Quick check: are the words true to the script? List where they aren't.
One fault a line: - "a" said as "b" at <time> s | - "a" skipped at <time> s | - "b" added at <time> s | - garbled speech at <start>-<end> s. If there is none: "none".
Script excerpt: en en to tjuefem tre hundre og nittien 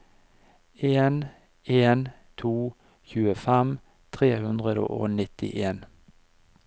none